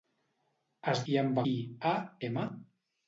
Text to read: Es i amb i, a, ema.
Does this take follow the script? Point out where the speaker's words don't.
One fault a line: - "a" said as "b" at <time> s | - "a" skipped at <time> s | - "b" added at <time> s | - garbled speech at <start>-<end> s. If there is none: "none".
none